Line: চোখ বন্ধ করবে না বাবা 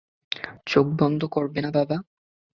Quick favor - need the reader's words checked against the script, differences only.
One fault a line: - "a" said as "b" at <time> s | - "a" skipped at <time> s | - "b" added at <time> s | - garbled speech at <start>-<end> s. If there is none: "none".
none